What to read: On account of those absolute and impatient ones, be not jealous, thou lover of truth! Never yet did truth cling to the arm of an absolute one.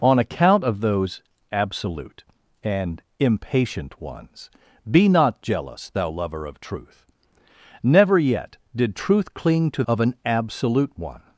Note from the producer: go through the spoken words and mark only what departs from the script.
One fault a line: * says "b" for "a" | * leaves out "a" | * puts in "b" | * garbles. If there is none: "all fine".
* leaves out "the arm"